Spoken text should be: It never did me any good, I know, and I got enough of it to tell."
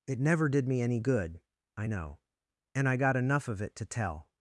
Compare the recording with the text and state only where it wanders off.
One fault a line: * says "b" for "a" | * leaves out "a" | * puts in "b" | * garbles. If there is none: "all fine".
all fine